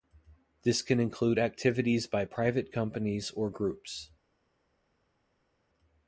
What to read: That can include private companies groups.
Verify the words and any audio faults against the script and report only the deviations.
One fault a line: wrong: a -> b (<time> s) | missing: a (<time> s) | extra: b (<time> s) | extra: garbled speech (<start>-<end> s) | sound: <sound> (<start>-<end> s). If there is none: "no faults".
wrong: That -> This (0.6 s)
extra: activities by (1.4 s)
extra: or (3.3 s)